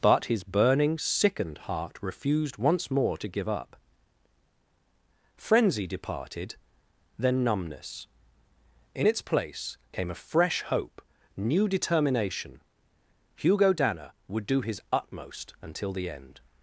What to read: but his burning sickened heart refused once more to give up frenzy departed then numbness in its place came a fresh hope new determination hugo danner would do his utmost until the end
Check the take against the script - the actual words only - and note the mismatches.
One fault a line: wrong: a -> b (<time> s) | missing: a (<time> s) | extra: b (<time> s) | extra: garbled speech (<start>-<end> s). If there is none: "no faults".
no faults